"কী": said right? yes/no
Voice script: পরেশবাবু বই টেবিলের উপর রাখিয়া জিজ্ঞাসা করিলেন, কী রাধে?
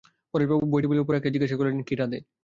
yes